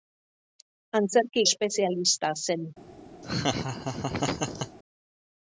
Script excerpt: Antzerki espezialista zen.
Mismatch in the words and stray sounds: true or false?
true